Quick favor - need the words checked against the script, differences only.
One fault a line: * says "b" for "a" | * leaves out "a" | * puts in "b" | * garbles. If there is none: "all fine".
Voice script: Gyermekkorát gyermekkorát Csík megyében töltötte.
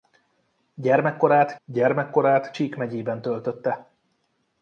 all fine